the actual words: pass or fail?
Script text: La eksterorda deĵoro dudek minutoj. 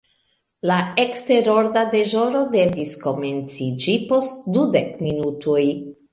fail